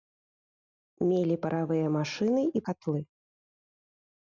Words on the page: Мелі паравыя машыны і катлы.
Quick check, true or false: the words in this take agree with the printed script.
true